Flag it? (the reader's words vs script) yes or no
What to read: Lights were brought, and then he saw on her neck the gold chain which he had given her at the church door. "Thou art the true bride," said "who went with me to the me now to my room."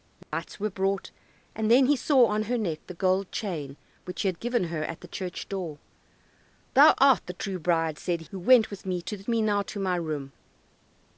no